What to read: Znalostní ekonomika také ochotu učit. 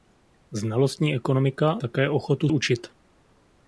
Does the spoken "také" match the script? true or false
true